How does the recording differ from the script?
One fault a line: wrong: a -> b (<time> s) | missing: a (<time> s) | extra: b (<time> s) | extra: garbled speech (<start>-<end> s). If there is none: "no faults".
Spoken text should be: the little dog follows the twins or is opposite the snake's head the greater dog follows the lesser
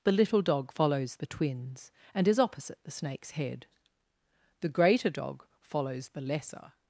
wrong: or -> and (2.1 s)